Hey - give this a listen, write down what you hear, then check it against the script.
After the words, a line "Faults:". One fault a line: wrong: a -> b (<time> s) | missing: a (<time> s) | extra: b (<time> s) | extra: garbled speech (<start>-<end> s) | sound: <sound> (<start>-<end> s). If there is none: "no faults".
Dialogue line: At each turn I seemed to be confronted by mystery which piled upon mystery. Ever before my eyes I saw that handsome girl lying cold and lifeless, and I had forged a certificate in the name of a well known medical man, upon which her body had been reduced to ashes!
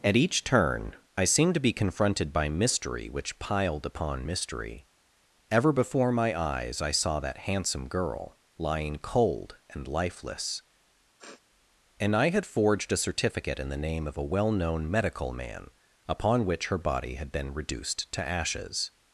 At each turn I seemed to be confronted by mystery which piled upon mystery. Ever before my eyes I saw that handsome girl lying cold and lifeless, and I had forged a certificate in the name of a well known medical man, upon which her body had been reduced to ashes!
Faults:
sound: sniff (11.2-11.4 s)